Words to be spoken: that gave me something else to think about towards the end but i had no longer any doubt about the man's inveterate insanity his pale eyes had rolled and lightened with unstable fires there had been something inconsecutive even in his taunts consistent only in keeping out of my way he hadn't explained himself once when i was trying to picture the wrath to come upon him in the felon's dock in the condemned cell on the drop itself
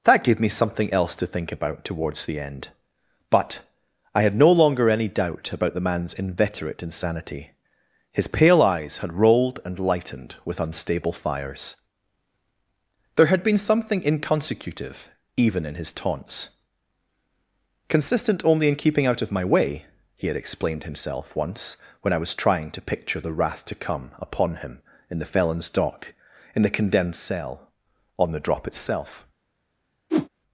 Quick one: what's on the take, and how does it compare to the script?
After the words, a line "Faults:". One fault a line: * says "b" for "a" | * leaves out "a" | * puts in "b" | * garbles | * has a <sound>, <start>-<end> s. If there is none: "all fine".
that gave me something else to think about towards the end but i had no longer any doubt about the man's inveterate insanity his pale eyes had rolled and lightened with unstable fires there had been something inconsecutive even in his taunts consistent only in keeping out of my way he had explained himself once when i was trying to picture the wrath to come upon him in the felon's dock in the condemned cell on the drop itself
Faults:
* says "had" for "hadn't"
* has a whoosh, 30.1-30.3 s